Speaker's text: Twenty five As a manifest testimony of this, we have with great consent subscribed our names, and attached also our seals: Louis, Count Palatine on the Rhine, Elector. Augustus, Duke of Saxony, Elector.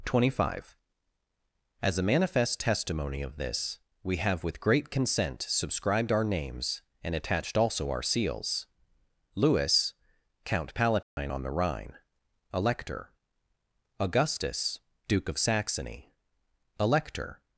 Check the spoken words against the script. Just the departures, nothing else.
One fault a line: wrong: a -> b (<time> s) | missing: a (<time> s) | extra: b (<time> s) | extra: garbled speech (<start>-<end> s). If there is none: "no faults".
no faults